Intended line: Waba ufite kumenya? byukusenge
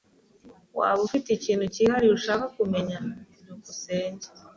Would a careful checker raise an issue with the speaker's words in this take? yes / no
yes